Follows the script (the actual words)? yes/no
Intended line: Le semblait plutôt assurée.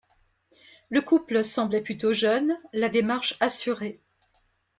no